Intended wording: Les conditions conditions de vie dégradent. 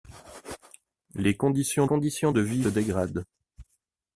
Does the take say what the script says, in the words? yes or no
yes